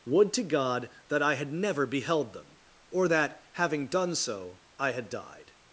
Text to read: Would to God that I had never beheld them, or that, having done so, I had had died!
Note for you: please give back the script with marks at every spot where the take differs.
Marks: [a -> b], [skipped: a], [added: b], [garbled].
Would to God that I had never beheld them, or that, having done so, I had [skipped: had] died!